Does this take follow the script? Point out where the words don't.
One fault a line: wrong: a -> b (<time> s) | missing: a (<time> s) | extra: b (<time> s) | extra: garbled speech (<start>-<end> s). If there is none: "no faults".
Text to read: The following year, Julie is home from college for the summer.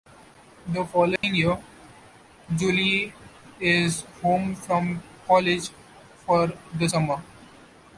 no faults